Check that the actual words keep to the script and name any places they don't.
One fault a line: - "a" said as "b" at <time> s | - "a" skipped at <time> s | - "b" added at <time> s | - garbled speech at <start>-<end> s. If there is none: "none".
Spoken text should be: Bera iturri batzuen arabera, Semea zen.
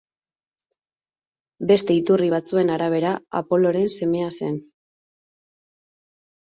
- "Bera" said as "Beste" at 1.7 s
- "Apoloren" added at 3.4 s